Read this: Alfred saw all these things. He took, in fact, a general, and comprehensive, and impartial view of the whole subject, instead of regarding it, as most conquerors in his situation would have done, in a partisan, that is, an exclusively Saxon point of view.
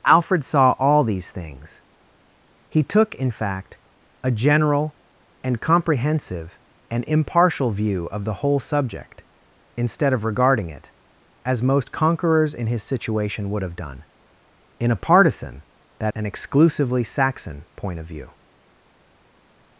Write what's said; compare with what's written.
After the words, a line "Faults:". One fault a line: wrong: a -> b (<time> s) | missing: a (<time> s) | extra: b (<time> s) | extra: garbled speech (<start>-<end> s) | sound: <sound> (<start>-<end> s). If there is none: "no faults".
Alfred saw all these things. He took, in fact, a general, and comprehensive, and impartial view of the whole subject, instead of regarding it, as most conquerors in his situation would have done, in a partisan, that an exclusively Saxon point of view.
Faults:
missing: is (16.1 s)